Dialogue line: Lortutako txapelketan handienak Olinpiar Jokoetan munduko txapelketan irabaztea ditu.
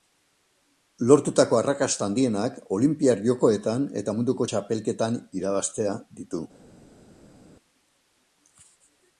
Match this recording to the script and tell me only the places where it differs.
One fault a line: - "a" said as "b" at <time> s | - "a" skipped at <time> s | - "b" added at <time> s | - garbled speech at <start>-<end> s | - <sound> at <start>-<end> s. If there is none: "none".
- "txapelketan" said as "arrakasta" at 1.6 s
- "eta" added at 4.0 s